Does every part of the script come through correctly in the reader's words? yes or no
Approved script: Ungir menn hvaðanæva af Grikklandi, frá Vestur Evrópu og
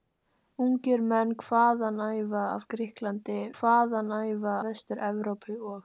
no